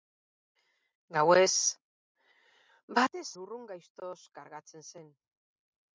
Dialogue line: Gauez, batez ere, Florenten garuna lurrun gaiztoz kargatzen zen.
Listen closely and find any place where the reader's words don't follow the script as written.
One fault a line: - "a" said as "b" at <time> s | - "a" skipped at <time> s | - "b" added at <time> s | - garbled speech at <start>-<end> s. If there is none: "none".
- "ere Florenten garuna" skipped at 3.3 s